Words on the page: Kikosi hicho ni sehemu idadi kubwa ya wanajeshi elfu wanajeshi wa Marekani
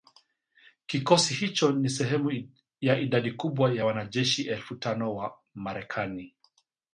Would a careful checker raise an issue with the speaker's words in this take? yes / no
yes